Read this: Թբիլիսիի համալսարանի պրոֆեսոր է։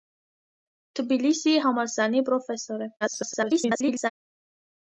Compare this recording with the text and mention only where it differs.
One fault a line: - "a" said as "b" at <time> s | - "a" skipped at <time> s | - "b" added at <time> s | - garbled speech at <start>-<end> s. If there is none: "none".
- garbled speech at 3.0-4.1 s